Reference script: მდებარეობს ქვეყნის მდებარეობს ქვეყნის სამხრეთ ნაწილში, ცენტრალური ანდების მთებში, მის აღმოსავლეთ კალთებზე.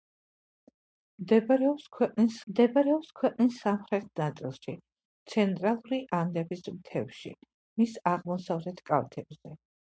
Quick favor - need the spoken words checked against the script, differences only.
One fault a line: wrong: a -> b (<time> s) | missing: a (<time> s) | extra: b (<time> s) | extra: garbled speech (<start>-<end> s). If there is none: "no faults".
no faults